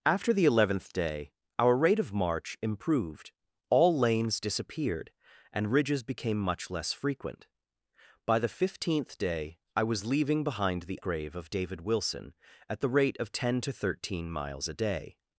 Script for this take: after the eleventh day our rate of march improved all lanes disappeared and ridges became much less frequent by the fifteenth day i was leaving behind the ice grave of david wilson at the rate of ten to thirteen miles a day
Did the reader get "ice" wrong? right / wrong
wrong